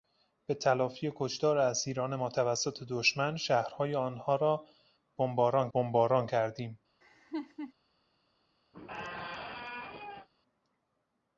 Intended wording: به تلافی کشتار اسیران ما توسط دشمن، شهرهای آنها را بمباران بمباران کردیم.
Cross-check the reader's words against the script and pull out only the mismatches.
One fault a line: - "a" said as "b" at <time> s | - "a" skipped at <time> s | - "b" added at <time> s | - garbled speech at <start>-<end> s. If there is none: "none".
none